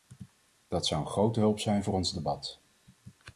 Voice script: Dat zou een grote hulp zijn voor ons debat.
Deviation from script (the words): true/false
false